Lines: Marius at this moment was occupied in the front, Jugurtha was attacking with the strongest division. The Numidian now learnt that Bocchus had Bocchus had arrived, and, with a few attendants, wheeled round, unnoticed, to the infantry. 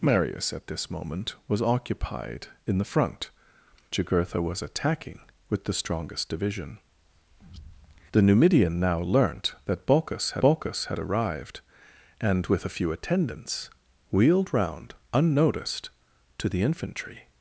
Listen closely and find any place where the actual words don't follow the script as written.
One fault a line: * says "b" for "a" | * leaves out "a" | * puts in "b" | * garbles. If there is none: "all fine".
all fine